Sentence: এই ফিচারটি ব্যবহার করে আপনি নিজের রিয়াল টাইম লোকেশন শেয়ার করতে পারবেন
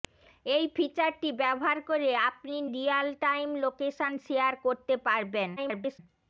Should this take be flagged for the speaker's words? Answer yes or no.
yes